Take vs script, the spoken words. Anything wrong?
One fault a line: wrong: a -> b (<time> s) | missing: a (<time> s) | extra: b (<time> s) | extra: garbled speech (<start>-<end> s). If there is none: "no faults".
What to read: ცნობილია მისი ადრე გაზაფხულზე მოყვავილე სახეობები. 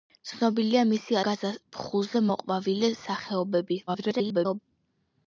missing: ადრე (1.2 s)
extra: garbled speech (3.9-4.6 s)